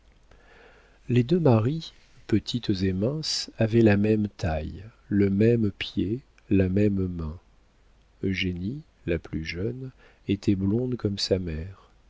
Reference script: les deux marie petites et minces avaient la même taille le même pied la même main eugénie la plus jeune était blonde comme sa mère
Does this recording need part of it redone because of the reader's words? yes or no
no